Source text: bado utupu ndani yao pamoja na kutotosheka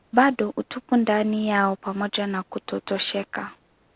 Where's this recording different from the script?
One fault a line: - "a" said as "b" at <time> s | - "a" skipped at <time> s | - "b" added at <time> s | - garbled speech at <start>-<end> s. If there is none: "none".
none